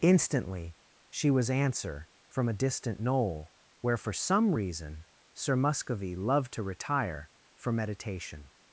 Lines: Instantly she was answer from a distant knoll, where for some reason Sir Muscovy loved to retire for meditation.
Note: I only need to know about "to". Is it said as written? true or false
true